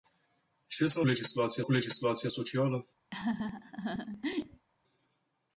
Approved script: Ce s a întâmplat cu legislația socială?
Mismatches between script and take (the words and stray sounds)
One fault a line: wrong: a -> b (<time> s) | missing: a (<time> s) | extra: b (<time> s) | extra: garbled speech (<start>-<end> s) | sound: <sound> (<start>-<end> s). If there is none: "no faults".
wrong: întâmplat -> legislația (1.1 s)
sound: laugh (3.1-4.7 s)